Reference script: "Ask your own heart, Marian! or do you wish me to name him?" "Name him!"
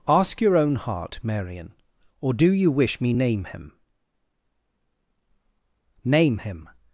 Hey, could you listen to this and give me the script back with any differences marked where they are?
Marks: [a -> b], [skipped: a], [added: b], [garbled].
"Ask your own heart, Marian! or do you wish me [skipped: to] name him?" "Name him!"